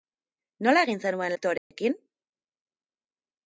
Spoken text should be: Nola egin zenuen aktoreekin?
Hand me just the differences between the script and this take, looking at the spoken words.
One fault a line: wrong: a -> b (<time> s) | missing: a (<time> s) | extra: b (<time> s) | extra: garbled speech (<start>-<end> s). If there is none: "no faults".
no faults